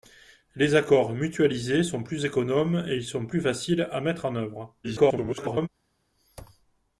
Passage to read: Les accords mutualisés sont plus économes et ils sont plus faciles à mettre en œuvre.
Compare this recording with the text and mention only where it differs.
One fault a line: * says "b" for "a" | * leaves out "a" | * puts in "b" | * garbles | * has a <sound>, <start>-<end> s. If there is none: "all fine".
* garbles